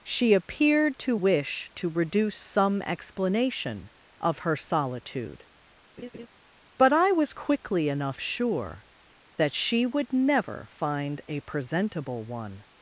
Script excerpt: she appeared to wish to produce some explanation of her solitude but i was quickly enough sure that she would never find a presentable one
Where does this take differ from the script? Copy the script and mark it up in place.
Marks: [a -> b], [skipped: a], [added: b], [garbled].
she appeared to wish to [produce -> reduce] some explanation of her solitude but i was quickly enough sure that she would never find a presentable one